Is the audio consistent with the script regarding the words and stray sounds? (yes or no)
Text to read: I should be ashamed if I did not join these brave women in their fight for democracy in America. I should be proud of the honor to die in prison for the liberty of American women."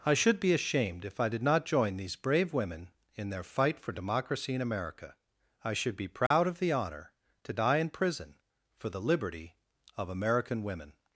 no